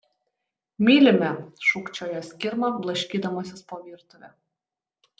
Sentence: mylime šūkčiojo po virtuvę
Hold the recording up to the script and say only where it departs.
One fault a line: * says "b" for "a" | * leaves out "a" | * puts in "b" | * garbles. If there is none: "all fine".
* puts in "skirma blaškydamasis"